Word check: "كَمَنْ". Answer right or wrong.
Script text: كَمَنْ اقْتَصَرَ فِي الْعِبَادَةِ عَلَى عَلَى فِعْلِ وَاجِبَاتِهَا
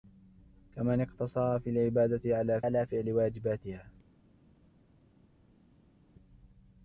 right